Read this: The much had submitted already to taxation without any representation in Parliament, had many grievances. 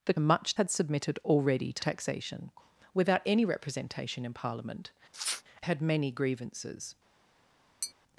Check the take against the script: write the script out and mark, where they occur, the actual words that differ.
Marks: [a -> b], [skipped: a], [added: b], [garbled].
The much had submitted already to taxation without any representation in Parliament, had many grievances.